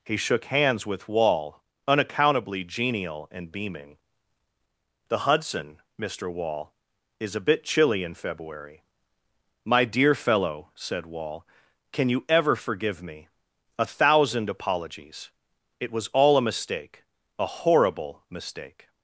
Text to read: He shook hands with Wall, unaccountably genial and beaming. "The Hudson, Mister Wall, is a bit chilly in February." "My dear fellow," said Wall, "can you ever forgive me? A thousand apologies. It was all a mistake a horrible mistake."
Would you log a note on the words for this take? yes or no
no